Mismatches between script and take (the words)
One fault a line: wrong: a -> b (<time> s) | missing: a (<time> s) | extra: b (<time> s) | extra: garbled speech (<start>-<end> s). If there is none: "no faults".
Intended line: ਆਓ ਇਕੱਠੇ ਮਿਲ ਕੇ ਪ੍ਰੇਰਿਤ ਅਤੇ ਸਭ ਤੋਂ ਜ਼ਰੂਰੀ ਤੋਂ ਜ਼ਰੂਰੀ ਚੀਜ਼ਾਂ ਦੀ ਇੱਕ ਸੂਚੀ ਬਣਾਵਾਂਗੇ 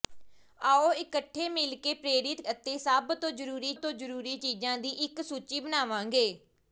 no faults